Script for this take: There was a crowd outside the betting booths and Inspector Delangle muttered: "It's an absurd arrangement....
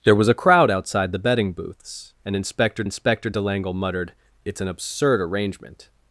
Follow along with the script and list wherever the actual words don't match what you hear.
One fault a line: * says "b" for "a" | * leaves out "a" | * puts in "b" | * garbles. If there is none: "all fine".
* puts in "Inspector"